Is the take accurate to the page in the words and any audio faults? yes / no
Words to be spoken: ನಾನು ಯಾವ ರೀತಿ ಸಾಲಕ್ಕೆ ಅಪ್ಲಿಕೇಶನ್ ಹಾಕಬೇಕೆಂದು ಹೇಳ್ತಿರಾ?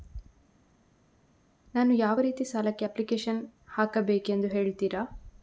yes